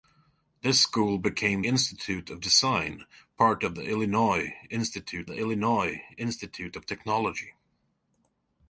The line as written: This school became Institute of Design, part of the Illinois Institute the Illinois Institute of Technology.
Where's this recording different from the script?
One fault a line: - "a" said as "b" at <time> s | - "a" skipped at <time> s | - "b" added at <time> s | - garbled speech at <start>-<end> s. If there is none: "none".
none